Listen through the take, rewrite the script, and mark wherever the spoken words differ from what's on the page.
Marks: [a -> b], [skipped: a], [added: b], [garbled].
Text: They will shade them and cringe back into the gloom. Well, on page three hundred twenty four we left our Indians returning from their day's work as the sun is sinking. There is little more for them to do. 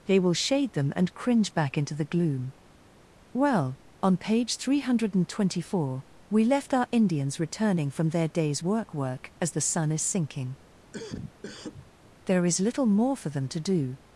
They will shade them and cringe back into the gloom. Well, on page three hundred twenty four we left our Indians returning from their day's work [added: work] as the sun is sinking. There is little more for them to do.